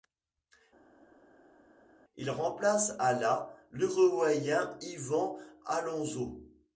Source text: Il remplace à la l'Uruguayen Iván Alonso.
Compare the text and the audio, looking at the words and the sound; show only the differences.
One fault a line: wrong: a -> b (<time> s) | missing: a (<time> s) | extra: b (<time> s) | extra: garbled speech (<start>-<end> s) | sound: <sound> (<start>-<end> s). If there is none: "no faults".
no faults